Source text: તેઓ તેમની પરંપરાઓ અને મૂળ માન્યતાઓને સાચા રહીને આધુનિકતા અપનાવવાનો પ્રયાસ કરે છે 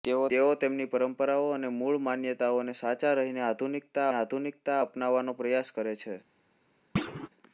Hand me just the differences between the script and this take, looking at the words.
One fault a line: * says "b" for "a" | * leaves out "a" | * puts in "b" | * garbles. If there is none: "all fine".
* puts in "આધુનિકતા"